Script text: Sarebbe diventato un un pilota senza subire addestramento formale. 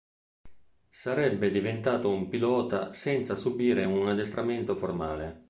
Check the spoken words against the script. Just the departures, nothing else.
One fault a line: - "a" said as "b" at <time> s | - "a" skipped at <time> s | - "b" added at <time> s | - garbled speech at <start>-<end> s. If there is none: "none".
- "un" skipped at 2.3 s
- "un" added at 3.8 s